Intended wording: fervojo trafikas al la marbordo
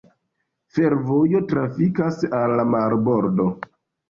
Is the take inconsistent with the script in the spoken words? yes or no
no